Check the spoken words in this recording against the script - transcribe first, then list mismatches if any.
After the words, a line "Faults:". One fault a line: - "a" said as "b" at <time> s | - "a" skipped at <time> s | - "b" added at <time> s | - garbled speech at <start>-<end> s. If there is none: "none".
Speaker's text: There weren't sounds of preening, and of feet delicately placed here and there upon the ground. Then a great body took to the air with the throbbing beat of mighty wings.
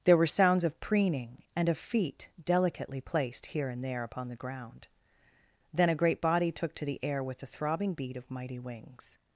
There were sounds of preening, and of feet delicately placed here and there upon the ground. Then a great body took to the air with the throbbing beat of mighty wings.
Faults:
- "weren't" said as "were" at 0.2 s